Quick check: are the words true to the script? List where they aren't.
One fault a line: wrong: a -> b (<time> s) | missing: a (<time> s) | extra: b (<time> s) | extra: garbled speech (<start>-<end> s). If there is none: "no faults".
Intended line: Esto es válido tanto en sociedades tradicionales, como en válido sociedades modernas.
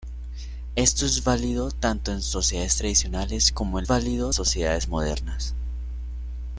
no faults